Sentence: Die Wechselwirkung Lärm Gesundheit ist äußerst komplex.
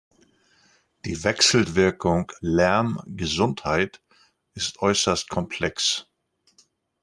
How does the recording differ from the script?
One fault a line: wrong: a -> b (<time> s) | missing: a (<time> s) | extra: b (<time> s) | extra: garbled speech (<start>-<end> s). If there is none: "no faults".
no faults